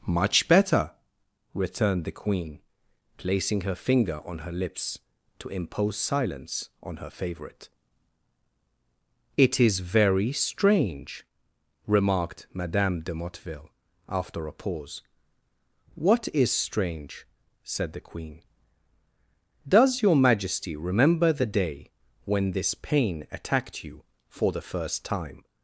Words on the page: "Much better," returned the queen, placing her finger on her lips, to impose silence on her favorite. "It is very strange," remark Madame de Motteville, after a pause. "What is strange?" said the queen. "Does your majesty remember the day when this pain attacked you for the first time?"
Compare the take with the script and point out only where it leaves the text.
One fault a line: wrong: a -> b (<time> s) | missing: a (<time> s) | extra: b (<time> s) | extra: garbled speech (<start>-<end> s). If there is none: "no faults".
wrong: remark -> remarked (11.9 s)